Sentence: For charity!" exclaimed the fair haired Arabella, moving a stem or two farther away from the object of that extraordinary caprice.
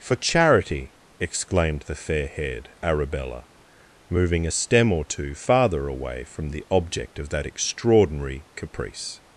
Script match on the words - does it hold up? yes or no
yes